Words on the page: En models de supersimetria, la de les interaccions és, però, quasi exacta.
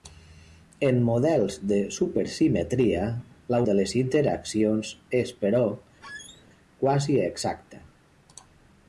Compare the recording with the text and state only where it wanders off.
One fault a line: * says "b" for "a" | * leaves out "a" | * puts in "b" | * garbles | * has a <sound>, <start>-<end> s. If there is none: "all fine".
* has a squeak, 6.0-6.4 s